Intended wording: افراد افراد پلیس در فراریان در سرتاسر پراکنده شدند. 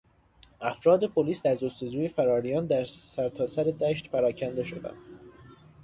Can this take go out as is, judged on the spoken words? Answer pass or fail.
fail